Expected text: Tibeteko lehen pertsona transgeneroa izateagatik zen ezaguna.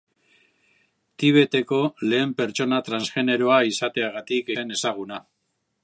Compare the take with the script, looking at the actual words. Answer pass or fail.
pass